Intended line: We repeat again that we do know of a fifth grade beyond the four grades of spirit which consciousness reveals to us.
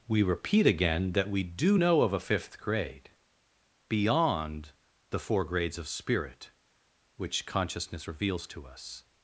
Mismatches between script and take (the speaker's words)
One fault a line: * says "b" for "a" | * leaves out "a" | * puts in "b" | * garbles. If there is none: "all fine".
all fine